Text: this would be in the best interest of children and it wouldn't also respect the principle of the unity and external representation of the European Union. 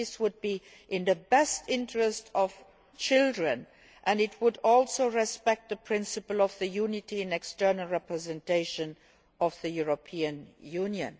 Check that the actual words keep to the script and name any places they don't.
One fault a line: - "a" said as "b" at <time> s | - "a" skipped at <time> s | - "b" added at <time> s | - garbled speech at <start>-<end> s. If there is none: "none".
- "wouldn't" said as "would" at 4.4 s